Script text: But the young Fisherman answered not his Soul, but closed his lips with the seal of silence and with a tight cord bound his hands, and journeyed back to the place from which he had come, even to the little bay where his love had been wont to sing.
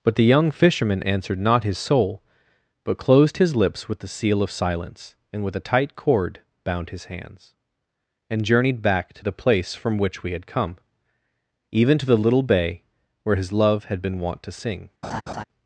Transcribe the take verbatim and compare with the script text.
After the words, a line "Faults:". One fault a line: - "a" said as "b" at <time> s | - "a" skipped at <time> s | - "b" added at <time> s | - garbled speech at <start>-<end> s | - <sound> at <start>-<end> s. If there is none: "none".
But the young Fisherman answered not his Soul, but closed his lips with the seal of silence and with a tight cord bound his hands, and journeyed back to the place from which we had come, even to the little bay where his love had been wont to sing.
Faults:
- "he" said as "we" at 10.2 s
- laugh at 15.0-15.4 s